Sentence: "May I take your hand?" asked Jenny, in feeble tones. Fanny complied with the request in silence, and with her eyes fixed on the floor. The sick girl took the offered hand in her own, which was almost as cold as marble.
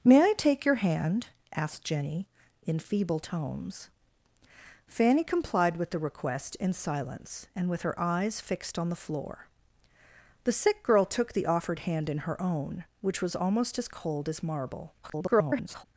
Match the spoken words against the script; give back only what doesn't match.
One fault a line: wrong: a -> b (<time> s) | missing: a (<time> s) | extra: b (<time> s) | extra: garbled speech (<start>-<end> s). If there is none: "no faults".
extra: garbled speech (15.0-15.8 s)